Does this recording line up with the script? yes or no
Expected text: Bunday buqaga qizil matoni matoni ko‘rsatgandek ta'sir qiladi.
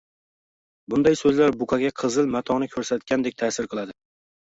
no